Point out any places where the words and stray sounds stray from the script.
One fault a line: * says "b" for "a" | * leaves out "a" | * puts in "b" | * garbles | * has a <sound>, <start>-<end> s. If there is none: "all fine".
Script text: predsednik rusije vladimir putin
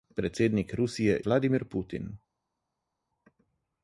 all fine